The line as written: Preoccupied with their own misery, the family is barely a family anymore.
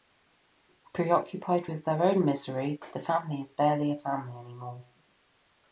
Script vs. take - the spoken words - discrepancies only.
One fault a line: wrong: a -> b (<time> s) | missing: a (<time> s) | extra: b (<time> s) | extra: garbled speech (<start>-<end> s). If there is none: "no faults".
no faults